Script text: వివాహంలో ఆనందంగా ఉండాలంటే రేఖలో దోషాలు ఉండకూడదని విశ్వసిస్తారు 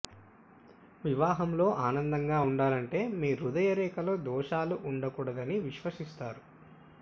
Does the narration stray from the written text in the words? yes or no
yes